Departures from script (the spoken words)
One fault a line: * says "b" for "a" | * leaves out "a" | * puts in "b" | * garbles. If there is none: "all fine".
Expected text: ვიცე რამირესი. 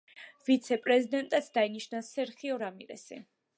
* puts in "პრეზიდენტად დაინიშნა სერხიო"